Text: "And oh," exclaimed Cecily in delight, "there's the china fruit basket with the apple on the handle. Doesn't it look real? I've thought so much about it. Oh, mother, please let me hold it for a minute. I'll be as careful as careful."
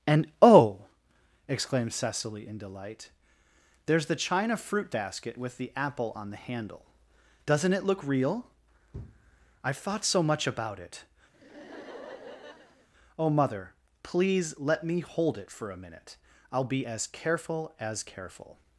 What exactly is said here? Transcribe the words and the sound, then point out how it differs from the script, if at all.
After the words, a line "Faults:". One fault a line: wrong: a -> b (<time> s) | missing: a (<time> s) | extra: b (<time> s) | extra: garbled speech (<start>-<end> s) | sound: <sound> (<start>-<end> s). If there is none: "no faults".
"And oh," exclaimed Cecily in delight, "there's the china fruit basket with the apple on the handle. Doesn't it look real? I've thought so much about it. Oh, mother, please let me hold it for a minute. I'll be as careful as careful."
Faults:
sound: laugh (11.3-12.9 s)